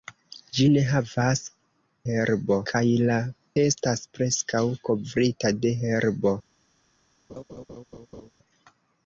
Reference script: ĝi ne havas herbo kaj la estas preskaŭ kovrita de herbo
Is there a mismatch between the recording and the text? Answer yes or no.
no